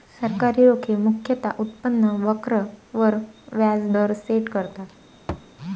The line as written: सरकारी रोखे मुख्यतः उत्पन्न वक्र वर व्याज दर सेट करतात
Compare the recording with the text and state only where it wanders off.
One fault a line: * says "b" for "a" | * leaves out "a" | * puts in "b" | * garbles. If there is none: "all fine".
all fine